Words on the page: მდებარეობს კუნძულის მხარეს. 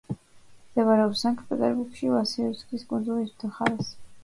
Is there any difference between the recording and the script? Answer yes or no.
yes